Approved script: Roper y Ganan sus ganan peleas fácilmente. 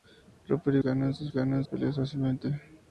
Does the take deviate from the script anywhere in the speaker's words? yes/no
no